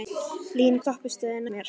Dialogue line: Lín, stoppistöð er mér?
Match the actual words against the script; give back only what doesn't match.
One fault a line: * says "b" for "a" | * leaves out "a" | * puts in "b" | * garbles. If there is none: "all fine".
all fine